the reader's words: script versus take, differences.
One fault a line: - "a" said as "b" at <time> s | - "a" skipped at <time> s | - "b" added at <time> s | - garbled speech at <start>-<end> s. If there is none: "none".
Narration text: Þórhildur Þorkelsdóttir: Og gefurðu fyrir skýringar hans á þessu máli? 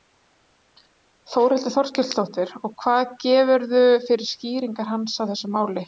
- "hvað" added at 2.9 s